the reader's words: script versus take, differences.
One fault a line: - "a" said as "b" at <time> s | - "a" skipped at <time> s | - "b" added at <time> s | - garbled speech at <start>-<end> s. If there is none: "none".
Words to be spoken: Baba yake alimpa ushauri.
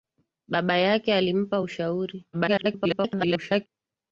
- garbled speech at 2.3-3.7 s